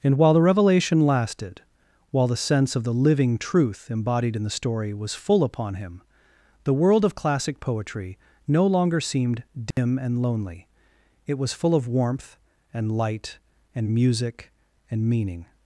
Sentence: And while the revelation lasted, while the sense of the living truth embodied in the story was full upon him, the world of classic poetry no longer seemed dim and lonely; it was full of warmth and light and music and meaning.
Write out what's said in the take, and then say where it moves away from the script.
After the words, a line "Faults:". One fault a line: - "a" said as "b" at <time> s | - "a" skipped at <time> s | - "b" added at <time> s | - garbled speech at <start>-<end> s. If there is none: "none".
And while the revelation lasted, while the sense of the living truth embodied in the story was full upon him, the world of classic poetry no longer seemed dim and lonely; it was full of warmth and light and music and meaning.
Faults:
none